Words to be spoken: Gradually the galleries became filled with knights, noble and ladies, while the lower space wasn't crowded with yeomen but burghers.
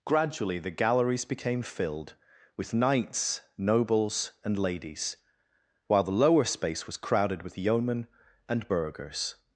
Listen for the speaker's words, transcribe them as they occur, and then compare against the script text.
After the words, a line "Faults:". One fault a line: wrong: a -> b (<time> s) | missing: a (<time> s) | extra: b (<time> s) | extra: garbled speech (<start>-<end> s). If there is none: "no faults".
Gradually the galleries became filled with knights, nobles and ladies, while the lower space was crowded with yeomen and burghers.
Faults:
wrong: noble -> nobles (3.6 s)
wrong: wasn't -> was (6.9 s)
wrong: but -> and (8.5 s)